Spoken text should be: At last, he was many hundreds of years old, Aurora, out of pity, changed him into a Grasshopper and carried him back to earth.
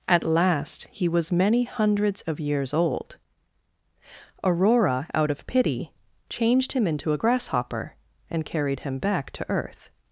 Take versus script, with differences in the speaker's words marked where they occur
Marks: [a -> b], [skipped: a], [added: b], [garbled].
At last, he was many hundreds of years old, Aurora, out of pity, changed him into a Grasshopper and carried him back to earth.